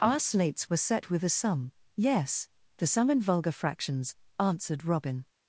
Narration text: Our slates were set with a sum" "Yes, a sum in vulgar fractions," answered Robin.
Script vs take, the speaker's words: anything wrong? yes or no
yes